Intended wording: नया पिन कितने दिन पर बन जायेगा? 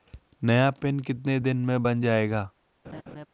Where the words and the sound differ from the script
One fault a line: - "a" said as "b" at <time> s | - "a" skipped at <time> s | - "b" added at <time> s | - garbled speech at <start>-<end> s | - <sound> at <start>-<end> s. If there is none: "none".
- "पर" said as "में" at 1.6 s
- laugh at 2.8-3.3 s